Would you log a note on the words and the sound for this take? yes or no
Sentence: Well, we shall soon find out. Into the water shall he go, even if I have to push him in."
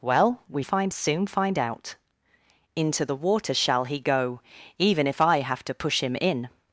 yes